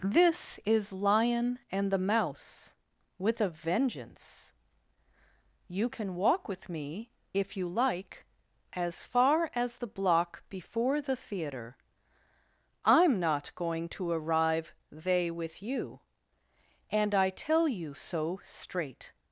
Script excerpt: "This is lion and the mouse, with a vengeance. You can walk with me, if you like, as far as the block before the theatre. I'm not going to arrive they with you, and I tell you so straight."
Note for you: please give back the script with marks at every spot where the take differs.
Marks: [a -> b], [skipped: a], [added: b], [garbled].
"This is lion and the mouse, with a vengeance. You can walk with me, if you like, as far as the block before the theatre. I'm not going to arrive they with you, and I tell you so straight."